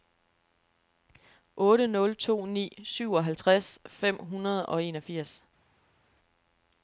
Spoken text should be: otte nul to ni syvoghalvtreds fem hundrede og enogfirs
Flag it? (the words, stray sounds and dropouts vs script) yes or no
no